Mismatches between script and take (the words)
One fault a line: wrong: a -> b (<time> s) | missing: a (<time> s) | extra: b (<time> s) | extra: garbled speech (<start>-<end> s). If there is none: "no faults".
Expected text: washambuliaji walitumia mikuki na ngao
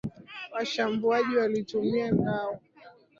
missing: mikuki na (2.1 s)